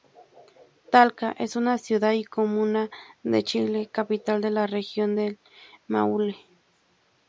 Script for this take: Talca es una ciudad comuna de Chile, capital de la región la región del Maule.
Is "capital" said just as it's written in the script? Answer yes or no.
yes